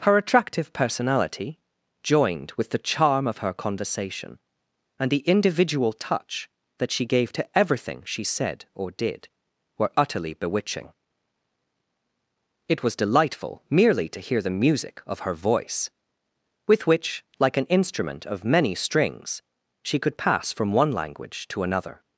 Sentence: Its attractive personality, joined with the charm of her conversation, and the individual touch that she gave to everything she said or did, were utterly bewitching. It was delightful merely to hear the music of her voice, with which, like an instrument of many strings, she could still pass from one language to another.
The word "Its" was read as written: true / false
false